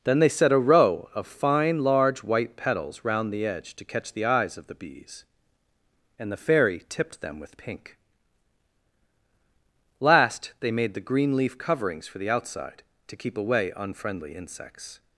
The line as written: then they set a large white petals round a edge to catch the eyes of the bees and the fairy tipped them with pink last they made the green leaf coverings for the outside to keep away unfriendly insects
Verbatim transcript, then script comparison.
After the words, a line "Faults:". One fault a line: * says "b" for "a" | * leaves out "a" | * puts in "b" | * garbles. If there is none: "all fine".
then they set a row of fine large white petals round the edge to catch the eyes of the bees and the fairy tipped them with pink last they made the green leaf coverings for the outside to keep away unfriendly insects
Faults:
* puts in "row of fine"
* says "the" for "a"